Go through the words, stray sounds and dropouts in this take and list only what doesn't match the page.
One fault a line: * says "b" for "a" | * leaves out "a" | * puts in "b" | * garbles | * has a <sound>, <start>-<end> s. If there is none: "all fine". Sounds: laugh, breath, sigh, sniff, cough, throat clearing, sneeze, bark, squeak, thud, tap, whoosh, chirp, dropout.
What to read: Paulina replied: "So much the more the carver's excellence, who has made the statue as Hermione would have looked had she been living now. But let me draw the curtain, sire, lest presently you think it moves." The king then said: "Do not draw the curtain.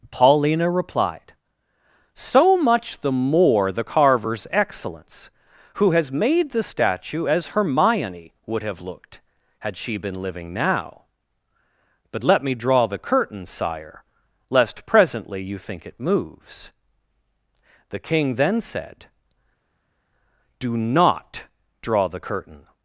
all fine